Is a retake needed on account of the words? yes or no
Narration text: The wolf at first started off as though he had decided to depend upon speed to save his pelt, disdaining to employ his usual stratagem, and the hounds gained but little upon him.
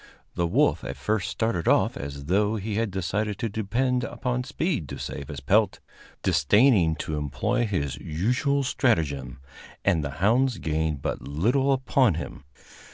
no